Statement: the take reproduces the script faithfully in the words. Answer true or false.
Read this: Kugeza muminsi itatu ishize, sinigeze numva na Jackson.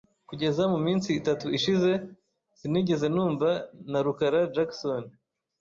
false